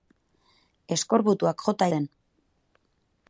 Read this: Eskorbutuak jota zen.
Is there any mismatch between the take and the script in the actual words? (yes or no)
no